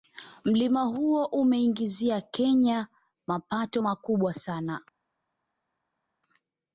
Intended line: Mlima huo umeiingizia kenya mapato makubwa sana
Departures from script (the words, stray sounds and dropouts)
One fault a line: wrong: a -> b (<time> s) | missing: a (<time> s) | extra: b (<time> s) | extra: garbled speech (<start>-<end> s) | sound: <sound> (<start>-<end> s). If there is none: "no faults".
no faults